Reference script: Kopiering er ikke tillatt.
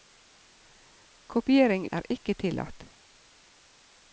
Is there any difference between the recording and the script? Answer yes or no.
no